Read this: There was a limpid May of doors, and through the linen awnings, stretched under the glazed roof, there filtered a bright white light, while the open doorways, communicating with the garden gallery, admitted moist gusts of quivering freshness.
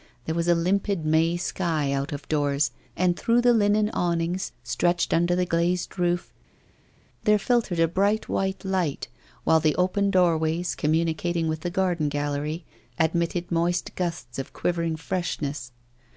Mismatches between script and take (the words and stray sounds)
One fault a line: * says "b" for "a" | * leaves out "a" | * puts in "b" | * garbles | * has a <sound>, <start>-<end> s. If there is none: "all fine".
* puts in "sky out"